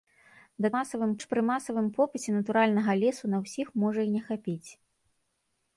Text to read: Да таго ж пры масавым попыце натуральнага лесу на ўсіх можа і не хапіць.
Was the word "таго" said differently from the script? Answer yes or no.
yes